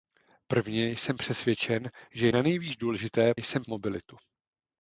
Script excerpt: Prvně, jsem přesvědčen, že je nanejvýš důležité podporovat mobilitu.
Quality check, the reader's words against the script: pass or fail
fail